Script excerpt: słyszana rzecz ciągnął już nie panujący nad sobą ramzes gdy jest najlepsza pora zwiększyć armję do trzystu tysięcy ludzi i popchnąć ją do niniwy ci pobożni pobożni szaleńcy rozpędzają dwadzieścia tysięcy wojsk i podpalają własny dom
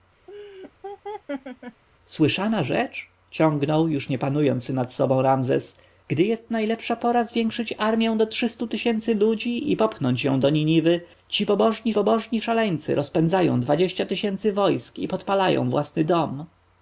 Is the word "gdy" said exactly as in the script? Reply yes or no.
yes